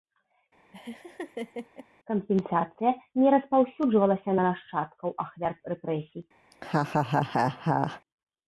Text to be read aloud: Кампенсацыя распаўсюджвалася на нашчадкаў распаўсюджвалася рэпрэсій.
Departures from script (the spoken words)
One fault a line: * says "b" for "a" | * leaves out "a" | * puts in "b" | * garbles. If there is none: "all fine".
* puts in "не"
* says "ахвяр" for "распаўсюджвалася"